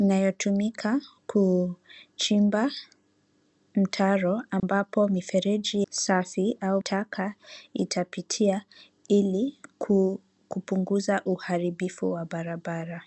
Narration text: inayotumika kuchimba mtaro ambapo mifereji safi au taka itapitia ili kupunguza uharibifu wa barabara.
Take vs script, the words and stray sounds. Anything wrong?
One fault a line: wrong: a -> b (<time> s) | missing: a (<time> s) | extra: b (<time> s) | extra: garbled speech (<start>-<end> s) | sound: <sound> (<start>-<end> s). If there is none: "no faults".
sound: dropout (4.6-4.6 s)